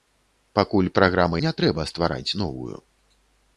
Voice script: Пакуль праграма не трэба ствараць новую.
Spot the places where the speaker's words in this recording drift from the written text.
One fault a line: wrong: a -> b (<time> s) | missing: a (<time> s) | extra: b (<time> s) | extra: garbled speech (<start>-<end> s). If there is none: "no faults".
no faults